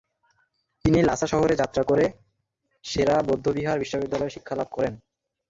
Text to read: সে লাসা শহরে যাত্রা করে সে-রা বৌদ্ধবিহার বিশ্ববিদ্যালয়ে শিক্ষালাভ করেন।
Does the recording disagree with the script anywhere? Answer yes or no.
yes